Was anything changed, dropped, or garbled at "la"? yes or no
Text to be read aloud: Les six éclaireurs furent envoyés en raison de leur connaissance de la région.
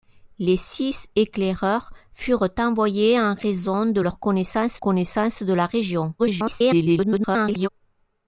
no